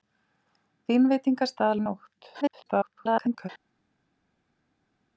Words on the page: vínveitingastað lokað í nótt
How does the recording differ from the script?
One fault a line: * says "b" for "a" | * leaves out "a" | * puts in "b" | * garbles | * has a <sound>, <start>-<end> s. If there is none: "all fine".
* leaves out "lokað"
* garbles